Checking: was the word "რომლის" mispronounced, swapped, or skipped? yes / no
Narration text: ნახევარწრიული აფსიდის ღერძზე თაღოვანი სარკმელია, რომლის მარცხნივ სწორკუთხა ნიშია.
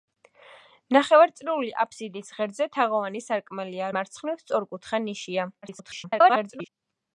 yes